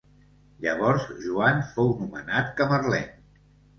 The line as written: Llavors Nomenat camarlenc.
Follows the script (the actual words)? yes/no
no